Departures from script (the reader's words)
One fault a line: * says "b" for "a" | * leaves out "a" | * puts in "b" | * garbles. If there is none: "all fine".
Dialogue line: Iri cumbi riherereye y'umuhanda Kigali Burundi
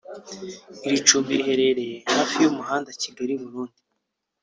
* puts in "hafi"